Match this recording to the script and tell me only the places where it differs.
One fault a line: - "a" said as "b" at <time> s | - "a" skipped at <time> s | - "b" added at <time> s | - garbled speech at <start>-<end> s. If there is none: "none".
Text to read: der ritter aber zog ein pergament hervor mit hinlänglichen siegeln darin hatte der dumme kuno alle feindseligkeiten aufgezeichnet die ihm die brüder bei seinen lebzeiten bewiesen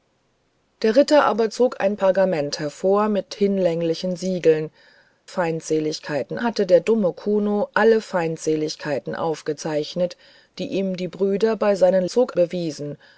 - "darin" said as "feindseligkeiten" at 5.2 s
- "lebzeiten" said as "zog" at 12.1 s